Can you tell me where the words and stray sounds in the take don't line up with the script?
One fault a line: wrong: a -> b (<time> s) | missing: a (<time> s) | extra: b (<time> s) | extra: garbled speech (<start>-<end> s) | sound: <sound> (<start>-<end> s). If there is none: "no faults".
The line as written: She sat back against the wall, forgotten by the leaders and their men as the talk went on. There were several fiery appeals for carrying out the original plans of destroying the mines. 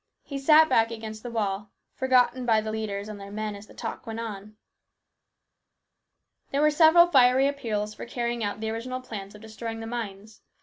wrong: She -> He (0.2 s)